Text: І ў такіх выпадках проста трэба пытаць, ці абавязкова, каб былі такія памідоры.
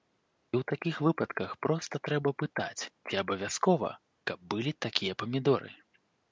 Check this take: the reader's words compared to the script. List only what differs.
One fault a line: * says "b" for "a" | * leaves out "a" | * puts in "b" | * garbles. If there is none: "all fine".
all fine